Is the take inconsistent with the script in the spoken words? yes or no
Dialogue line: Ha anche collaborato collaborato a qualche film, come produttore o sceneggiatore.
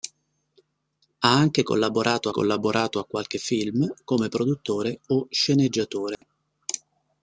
no